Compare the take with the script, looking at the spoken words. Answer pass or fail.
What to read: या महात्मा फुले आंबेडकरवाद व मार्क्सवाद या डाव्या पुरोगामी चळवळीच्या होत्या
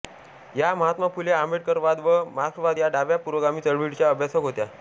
fail